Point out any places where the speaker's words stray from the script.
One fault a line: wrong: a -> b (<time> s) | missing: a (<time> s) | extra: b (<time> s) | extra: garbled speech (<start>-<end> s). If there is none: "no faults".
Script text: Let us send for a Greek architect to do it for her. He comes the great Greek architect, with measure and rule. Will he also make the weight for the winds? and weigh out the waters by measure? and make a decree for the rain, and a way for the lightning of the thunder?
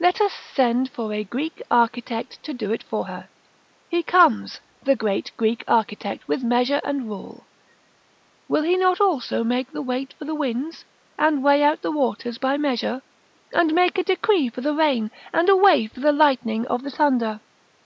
extra: not (8.8 s)